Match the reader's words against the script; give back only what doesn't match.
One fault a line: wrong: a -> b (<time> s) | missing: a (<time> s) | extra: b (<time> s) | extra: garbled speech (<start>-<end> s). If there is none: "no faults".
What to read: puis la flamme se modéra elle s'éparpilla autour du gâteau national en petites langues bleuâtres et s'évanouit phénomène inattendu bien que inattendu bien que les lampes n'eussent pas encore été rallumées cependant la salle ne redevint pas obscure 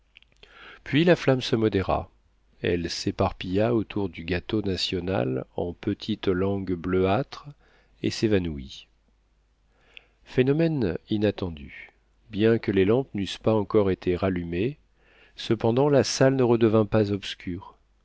missing: inattendu bien que (12.7 s)